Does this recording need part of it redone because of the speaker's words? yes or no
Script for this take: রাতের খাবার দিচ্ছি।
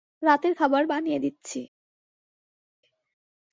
yes